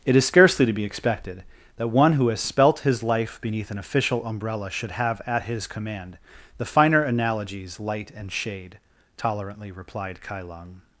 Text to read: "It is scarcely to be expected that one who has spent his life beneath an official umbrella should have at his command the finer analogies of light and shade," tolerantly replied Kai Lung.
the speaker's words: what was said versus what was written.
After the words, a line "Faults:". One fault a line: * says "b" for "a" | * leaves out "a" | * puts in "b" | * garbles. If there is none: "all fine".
"It is scarcely to be expected that one who has spelt his life beneath an official umbrella should have at his command the finer analogies light and shade," tolerantly replied Kai Lung.
Faults:
* says "spelt" for "spent"
* leaves out "of"